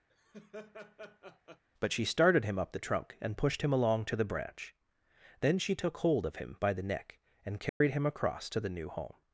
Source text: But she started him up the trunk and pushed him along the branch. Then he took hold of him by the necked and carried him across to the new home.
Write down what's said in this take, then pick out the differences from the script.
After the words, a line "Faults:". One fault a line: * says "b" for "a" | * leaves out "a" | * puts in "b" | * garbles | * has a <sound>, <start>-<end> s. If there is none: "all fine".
But she started him up the trunk and pushed him along to the branch. Then she took hold of him by the neck and carried him across to the new home.
Faults:
* has a laugh, 0.1-1.6 s
* puts in "to"
* says "she" for "he"
* says "neck" for "necked"
* has a dropout, 7.7-7.8 s